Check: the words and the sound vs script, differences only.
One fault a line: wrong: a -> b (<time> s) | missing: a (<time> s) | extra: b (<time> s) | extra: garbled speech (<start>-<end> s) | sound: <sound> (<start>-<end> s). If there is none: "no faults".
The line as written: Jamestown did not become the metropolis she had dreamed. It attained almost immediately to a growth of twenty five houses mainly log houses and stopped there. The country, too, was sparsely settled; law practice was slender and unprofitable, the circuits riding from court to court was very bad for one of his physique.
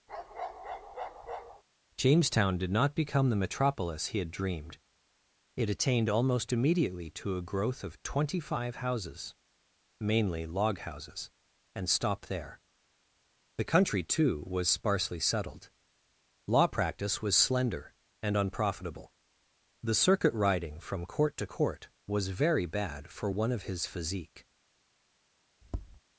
sound: bark (0.1-1.6 s)
wrong: she -> he (4.1 s)
wrong: circuits -> circuit (19.9 s)
sound: tap (25.6-26.0 s)